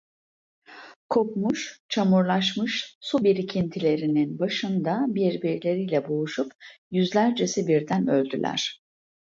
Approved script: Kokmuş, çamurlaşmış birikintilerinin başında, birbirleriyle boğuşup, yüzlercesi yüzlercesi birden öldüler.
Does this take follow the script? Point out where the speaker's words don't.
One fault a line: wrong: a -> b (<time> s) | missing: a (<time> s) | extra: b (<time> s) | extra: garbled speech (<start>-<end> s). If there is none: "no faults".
extra: su (3.0 s)
missing: yüzlercesi (7.7 s)